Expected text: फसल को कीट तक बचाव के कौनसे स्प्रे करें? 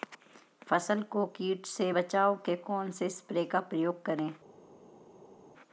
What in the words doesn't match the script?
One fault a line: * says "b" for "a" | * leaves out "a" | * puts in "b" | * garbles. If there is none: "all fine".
* says "से" for "तक"
* puts in "का प्रयोग"